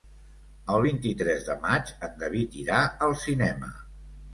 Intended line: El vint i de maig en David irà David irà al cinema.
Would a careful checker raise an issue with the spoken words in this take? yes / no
yes